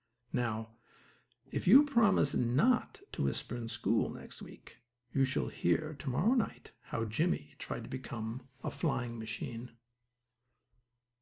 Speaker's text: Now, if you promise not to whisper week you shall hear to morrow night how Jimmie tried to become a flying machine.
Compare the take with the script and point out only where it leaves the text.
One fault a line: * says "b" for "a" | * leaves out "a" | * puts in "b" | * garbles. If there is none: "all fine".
* puts in "in school next"